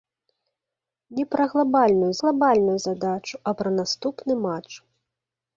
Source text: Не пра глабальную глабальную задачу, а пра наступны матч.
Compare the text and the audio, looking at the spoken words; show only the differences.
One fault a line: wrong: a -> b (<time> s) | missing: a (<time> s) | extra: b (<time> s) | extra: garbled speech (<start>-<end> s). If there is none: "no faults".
no faults